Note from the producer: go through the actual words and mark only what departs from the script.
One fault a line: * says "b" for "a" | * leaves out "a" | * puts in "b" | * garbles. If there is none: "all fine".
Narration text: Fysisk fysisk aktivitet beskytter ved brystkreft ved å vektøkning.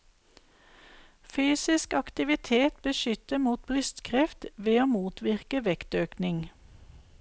* leaves out "fysisk"
* says "mot" for "ved"
* puts in "motvirke"